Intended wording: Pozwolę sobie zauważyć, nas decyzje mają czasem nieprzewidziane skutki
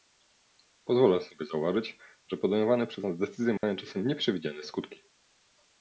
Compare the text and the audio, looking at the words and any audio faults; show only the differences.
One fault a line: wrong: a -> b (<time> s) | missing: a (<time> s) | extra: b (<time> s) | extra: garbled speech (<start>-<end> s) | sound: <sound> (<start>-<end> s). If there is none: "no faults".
extra: że podejmowane przez (2.3 s)
sound: dropout (3.6-3.6 s)